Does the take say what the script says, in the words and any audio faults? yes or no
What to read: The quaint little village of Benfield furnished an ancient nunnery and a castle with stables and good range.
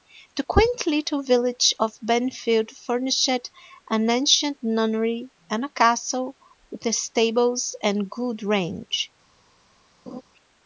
no